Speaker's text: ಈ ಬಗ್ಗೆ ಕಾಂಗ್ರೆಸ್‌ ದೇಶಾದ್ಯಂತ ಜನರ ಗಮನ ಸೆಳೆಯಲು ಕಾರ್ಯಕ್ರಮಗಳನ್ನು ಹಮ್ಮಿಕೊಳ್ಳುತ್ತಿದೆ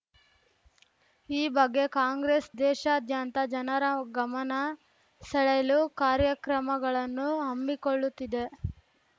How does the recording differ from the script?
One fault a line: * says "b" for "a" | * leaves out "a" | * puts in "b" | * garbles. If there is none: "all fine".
all fine